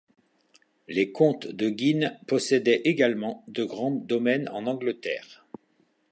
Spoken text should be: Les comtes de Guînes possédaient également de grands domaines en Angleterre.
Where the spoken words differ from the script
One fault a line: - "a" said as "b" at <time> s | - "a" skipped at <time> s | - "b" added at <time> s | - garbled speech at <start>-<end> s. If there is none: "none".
none